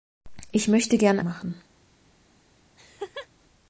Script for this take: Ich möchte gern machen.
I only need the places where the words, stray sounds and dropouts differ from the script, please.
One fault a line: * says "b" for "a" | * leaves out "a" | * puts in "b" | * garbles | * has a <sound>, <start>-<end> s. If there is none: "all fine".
* has a laugh, 2.8-3.3 s